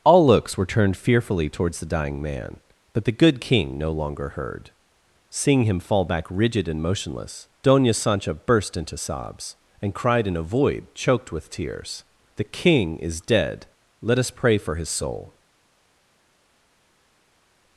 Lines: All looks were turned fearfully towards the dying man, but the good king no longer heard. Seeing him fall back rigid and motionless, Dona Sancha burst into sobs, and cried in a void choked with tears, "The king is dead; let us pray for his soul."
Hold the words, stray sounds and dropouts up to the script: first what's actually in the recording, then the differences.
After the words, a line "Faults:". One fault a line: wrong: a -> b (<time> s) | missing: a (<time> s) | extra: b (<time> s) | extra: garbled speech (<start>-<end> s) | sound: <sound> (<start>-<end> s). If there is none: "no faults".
All looks were turned fearfully towards the dying man, but the good king no longer heard. Seeing him fall back rigid and motionless, Dona Sancha burst into sobs, and cried in a void choked with tears, "The king is dead; let us pray for his soul."
Faults:
no faults